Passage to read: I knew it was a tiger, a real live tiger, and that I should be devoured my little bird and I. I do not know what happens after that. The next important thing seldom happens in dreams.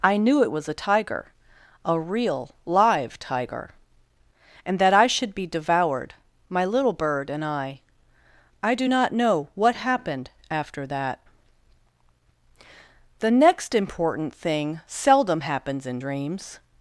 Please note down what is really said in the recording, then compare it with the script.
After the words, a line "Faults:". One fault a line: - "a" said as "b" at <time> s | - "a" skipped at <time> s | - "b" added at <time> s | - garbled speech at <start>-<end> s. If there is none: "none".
I knew it was a tiger, a real live tiger, and that I should be devoured my little bird and I. I do not know what happened after that. The next important thing seldom happens in dreams.
Faults:
- "happens" said as "happened" at 9.7 s